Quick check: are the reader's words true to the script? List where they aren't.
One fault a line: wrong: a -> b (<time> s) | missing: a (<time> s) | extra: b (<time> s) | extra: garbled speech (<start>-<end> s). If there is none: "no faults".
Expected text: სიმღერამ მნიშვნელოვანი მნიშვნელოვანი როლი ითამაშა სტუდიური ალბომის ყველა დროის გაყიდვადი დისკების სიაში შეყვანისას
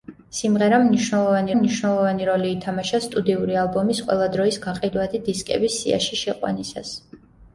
no faults